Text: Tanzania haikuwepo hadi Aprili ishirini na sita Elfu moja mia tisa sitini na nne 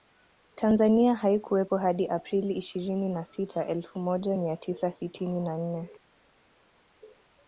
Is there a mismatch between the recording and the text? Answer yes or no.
no